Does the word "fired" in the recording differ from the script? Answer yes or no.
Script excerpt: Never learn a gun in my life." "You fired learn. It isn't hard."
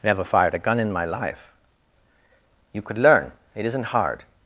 yes